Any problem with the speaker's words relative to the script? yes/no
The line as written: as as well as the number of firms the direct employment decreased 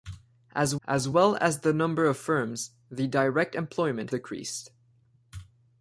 no